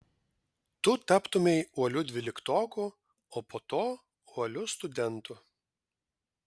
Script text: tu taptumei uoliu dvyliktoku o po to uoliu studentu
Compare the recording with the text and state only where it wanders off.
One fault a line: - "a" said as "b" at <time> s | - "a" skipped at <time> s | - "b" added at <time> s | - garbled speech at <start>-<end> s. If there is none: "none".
none